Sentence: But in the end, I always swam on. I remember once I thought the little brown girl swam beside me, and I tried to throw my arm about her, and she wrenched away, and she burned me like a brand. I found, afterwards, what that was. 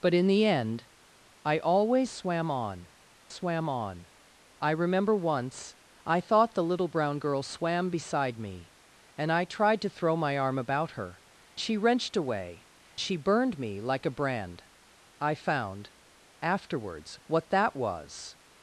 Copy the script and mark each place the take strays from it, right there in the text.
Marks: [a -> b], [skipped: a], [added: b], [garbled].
But in the end, I always swam on. [added: swam on] I remember once I thought the little brown girl swam beside me, and I tried to throw my arm about her, [skipped: and] she wrenched away, [skipped: and] she burned me like a brand. I found, afterwards, what that was.